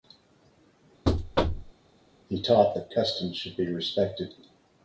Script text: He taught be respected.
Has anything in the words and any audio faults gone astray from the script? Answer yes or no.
yes